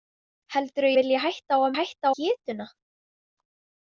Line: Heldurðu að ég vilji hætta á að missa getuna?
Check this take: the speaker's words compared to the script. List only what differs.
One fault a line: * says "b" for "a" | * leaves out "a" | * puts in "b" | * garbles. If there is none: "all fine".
* leaves out "ég"
* says "hætta" for "missa"